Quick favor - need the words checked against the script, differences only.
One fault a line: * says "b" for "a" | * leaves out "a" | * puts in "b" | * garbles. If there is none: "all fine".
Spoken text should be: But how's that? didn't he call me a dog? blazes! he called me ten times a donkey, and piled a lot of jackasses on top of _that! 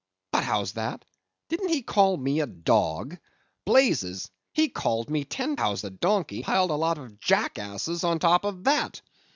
* says "how's" for "times"
* leaves out "and"